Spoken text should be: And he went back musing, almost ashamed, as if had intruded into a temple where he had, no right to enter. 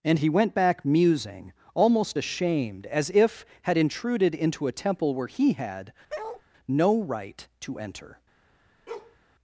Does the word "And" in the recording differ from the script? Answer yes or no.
no